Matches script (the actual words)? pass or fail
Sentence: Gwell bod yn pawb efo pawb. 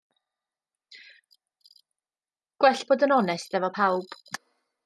fail